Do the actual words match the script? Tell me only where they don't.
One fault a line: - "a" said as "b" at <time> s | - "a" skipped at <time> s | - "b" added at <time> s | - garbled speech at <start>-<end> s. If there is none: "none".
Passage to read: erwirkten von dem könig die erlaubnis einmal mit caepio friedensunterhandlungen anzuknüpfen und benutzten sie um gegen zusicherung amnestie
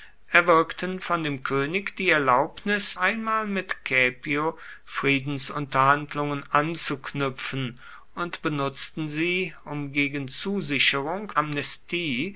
none